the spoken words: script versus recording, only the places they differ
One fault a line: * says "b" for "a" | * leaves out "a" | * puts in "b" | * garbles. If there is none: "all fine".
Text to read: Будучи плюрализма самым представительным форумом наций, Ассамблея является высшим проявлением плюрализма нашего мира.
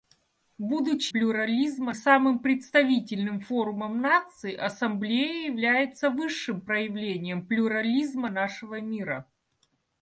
all fine